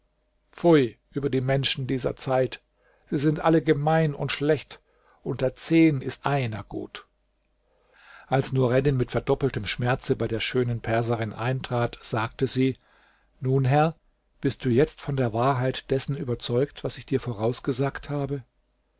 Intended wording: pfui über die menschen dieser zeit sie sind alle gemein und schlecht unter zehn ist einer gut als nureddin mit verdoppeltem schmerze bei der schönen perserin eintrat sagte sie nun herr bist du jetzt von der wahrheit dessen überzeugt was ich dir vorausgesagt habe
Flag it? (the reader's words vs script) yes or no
no